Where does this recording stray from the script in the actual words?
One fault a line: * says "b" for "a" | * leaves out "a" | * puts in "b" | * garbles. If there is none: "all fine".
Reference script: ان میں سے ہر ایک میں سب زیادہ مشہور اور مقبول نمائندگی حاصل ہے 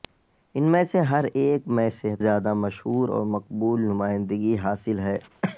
all fine